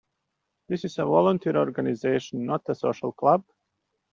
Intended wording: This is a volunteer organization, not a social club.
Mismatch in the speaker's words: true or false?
false